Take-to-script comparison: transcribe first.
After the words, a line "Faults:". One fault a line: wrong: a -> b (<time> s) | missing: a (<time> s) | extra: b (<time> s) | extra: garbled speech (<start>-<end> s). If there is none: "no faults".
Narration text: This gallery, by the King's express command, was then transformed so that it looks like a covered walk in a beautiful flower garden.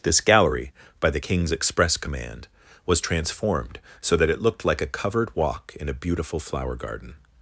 This gallery, by the King's express command, was transformed so that it looked like a covered walk in a beautiful flower garden.
Faults:
missing: then (3.0 s)
wrong: looks -> looked (4.4 s)